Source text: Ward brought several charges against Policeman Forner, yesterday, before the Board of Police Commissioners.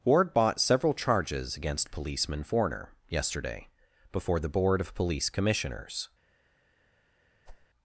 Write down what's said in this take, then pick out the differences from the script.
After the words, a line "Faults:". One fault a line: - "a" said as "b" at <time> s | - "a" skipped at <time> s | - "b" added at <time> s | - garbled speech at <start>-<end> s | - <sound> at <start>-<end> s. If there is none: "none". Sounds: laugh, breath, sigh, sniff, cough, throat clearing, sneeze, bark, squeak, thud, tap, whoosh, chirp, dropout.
Ward bought several charges against Policeman Forner, yesterday, before the Board of Police Commissioners.
Faults:
- "brought" said as "bought" at 0.3 s
- whoosh at 7.5-7.7 s